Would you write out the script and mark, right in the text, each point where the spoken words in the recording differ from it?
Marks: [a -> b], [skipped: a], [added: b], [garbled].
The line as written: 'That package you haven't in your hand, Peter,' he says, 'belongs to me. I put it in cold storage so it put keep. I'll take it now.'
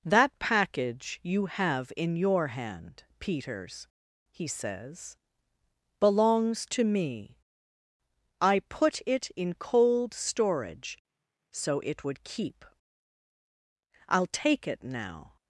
'That package you [haven't -> have] in your hand, [Peter,' -> Peters] he says, 'belongs to me. I put it in cold storage so it [put -> would] keep. I'll take it now.'